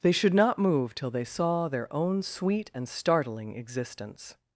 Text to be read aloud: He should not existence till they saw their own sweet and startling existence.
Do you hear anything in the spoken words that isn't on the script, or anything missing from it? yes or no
yes